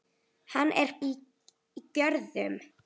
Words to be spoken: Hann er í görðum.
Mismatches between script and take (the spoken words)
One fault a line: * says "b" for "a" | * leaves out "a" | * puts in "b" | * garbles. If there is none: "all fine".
all fine